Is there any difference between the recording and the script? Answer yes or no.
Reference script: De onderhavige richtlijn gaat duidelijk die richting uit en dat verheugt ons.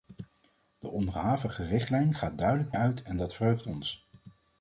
yes